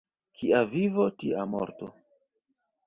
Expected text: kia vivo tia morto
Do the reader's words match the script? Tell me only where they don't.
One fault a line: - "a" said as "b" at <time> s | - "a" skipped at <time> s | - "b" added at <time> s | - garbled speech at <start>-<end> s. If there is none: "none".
none